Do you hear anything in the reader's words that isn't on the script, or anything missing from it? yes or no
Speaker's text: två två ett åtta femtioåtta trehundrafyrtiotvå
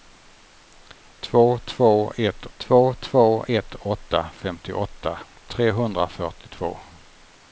yes